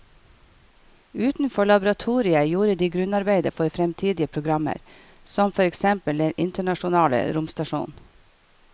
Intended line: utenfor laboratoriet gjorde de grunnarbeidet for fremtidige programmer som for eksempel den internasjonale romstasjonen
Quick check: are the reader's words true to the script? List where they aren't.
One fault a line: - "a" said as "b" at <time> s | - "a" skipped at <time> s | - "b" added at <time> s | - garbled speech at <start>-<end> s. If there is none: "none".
none